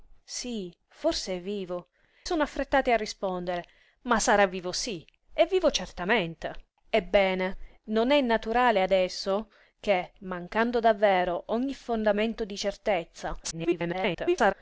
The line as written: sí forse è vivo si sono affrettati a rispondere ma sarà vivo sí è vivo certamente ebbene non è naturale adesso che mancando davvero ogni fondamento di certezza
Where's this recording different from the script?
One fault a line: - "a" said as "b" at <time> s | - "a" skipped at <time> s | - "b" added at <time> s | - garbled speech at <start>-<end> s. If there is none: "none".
- "si" skipped at 1.9 s
- garbled speech at 13.4-14.5 s